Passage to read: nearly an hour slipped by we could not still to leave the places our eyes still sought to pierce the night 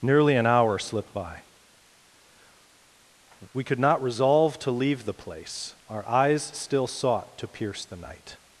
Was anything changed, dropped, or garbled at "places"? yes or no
yes